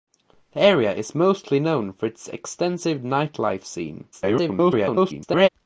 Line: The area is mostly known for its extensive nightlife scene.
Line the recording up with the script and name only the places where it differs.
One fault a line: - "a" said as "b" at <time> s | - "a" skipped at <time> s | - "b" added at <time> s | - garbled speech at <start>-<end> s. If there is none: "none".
- garbled speech at 4.1-5.5 s